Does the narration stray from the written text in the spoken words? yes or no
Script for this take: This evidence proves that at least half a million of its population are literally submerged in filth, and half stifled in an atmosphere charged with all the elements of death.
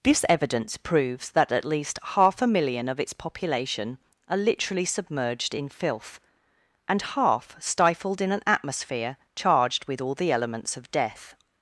no